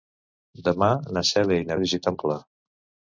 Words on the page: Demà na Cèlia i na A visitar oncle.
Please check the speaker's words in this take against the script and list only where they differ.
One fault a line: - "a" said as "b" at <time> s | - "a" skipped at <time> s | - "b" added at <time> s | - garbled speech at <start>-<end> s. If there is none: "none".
none